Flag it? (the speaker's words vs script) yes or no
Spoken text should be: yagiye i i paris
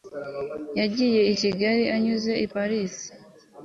yes